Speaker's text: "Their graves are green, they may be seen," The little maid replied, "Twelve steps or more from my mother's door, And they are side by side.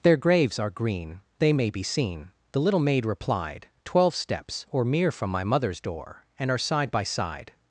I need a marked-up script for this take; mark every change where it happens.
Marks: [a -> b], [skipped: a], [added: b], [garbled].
"Their graves are green, they may be seen," The little maid replied, "Twelve steps or [more -> mere] from my mother's door, And [skipped: they] are side by side.